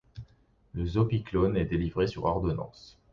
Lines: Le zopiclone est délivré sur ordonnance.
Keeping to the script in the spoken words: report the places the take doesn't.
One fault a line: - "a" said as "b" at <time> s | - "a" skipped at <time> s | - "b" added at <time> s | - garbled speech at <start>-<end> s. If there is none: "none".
none